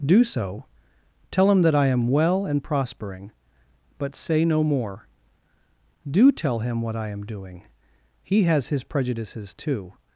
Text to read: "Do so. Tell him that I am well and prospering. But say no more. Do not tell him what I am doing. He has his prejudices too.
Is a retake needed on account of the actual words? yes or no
yes